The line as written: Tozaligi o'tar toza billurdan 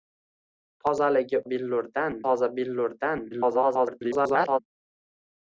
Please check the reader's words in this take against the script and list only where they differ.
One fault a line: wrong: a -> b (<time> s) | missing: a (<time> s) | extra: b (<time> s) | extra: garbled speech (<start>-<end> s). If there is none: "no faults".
wrong: o'tar -> billurdan (1.5 s)
extra: garbled speech (3.3-4.6 s)